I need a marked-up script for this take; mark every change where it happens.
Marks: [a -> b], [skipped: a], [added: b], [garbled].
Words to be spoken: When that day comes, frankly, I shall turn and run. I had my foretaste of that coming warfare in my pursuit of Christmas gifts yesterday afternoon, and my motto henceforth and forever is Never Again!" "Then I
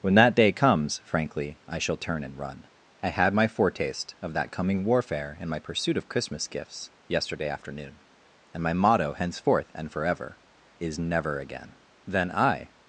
When that day comes, frankly, I shall turn and run. I had my foretaste of that coming warfare in my pursuit of Christmas gifts yesterday afternoon, and my motto henceforth and forever is Never Again!" "Then I